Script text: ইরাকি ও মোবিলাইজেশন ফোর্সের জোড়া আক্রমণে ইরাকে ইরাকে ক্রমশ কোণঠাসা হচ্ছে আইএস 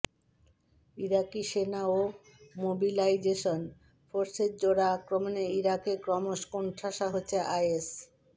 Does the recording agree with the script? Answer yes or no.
no